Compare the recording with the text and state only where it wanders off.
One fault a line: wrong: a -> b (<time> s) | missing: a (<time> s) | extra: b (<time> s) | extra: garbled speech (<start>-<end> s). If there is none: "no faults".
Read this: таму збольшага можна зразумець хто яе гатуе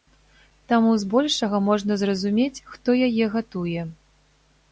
no faults